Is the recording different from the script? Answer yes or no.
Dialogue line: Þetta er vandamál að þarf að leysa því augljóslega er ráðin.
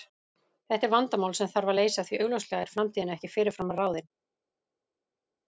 yes